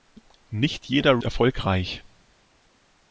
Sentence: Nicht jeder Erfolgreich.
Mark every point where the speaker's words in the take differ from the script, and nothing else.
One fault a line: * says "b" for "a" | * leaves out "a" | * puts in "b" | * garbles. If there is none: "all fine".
all fine